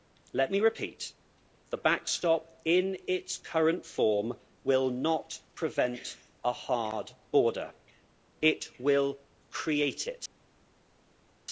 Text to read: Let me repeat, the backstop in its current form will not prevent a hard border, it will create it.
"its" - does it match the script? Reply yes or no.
yes